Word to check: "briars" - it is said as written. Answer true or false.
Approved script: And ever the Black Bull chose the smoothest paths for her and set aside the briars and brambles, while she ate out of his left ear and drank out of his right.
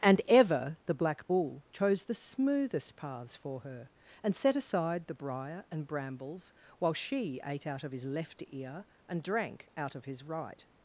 false